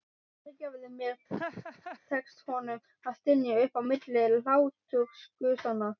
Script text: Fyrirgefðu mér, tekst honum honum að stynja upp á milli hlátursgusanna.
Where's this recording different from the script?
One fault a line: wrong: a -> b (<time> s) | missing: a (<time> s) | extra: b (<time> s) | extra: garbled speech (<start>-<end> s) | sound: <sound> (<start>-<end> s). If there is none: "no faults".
sound: laugh (1.3-2.0 s)
missing: honum (2.8 s)